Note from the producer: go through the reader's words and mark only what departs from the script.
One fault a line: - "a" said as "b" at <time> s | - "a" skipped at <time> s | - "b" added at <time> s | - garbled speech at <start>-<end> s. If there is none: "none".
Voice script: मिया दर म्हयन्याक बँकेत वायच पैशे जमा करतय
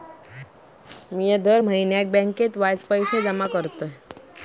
none